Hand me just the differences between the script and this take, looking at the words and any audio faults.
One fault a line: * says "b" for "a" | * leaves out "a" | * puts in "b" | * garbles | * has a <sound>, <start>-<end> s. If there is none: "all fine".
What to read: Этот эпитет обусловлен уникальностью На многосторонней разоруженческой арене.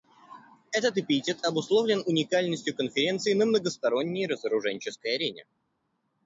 * puts in "Конференции"